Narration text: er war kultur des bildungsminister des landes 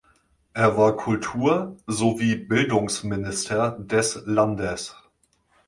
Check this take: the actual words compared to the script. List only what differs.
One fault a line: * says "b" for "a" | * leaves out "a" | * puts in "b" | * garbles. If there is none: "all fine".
* says "sowie" for "des"